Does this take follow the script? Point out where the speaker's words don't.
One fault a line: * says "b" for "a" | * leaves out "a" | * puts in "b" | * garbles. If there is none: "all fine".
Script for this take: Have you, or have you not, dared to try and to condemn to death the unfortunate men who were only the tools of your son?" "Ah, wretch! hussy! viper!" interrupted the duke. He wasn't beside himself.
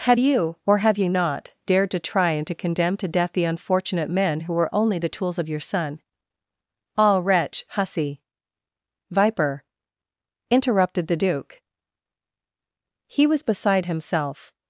* says "was" for "wasn't"